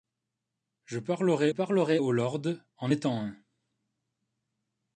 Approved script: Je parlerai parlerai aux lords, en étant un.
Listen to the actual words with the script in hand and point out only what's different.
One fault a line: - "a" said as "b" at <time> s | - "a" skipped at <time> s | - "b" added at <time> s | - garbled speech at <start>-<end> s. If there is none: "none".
none